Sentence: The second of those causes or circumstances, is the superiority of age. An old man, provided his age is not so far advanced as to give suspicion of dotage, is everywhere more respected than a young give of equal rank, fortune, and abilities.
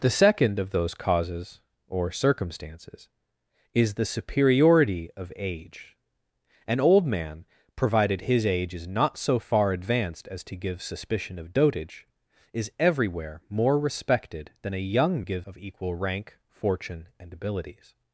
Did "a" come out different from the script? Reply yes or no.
no